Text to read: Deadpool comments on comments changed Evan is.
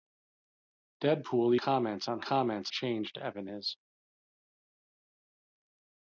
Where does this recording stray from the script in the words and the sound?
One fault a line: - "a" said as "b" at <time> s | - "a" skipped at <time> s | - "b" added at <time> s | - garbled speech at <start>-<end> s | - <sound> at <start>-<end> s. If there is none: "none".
none